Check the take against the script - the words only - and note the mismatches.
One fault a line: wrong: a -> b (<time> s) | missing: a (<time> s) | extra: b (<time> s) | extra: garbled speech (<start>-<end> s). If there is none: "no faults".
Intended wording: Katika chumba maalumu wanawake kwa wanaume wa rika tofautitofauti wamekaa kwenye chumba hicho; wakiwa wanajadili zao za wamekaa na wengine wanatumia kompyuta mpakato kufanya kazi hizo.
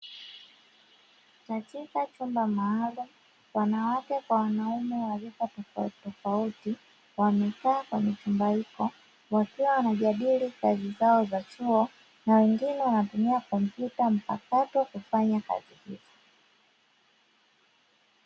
extra: kazi (10.6 s)
wrong: wamekaa -> chuo (11.4 s)